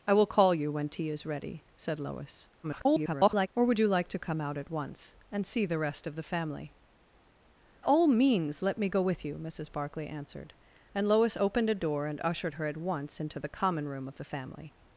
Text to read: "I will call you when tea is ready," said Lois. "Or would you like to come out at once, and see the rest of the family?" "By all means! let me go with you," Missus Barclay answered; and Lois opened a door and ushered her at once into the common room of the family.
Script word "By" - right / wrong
wrong